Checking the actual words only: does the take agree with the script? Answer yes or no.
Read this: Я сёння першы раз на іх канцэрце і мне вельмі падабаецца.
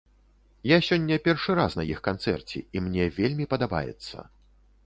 yes